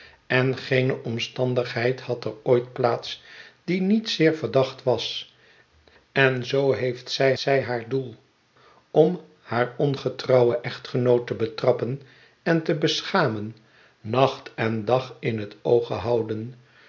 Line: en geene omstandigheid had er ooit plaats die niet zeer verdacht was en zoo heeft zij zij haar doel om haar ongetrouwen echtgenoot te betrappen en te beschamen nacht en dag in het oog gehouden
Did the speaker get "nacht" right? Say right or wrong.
right